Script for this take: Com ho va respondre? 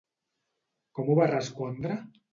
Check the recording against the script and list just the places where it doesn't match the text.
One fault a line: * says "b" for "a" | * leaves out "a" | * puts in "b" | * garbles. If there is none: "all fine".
all fine